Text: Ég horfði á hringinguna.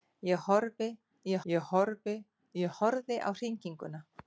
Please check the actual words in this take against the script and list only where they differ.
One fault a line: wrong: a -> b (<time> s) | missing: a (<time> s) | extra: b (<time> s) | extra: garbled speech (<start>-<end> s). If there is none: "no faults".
extra: ég (1.5 s)